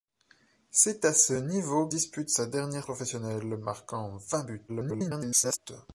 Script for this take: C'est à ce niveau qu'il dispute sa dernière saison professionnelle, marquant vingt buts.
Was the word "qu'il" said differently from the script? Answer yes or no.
yes